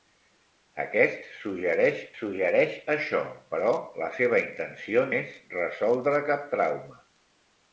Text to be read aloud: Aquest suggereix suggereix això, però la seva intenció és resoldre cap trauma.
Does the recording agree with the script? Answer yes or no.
yes